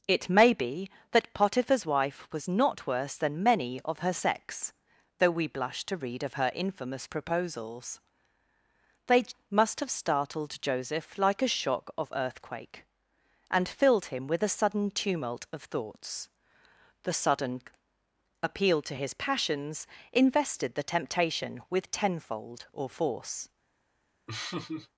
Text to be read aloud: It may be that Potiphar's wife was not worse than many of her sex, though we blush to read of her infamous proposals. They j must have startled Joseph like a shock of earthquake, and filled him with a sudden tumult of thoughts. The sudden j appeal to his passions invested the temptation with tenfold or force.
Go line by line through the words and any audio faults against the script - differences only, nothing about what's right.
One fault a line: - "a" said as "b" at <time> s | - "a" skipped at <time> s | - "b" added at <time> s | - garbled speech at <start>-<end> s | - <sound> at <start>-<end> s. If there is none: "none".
- "j" skipped at 9.2 s
- "j" skipped at 17.6 s
- laugh at 24.3-24.9 s